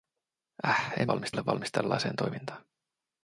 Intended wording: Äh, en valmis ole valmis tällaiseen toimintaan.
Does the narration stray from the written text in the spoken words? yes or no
no